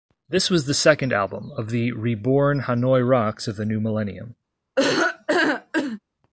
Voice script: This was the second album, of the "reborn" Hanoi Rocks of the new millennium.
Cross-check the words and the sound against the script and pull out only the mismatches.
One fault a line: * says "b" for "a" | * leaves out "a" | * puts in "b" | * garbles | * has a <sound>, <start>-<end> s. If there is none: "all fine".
* has a laugh, 4.8-6.0 s